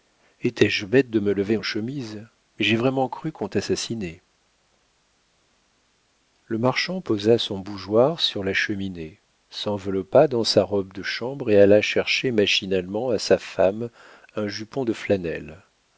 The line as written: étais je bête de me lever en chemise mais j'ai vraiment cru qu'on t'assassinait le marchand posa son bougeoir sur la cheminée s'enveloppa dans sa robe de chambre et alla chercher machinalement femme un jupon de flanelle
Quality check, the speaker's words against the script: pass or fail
fail